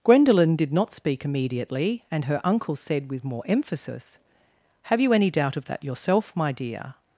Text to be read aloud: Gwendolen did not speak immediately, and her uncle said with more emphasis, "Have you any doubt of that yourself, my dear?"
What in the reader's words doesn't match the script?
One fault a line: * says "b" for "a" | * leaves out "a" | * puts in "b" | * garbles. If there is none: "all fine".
all fine